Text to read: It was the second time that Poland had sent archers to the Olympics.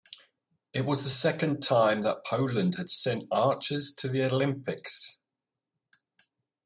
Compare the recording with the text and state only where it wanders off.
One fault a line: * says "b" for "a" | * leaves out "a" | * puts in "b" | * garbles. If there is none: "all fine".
all fine